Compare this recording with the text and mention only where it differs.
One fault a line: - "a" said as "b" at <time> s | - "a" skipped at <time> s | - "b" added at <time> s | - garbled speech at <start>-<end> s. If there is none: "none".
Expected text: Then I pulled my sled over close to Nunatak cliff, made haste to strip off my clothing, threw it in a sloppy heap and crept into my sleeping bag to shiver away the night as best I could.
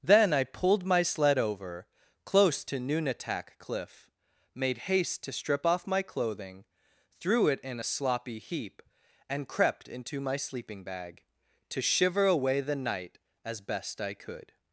none